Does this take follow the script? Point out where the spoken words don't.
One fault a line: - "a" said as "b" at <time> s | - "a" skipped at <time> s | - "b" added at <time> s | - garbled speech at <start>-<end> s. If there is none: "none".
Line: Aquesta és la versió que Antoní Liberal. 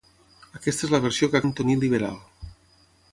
none